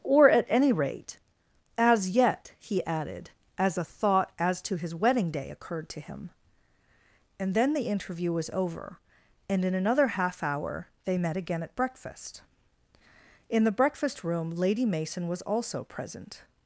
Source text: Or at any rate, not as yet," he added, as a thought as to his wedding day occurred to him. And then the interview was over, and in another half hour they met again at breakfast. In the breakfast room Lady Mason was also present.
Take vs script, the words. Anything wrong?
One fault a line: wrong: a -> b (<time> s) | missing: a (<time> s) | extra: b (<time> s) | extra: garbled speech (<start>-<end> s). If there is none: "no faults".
missing: not (1.2 s)